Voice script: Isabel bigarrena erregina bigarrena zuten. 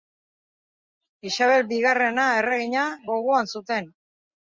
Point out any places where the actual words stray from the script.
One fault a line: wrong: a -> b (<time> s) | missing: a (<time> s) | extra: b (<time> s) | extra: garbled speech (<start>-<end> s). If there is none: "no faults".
wrong: bigarrena -> gogoan (3.1 s)